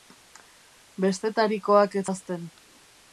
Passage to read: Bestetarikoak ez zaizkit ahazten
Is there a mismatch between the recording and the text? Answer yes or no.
yes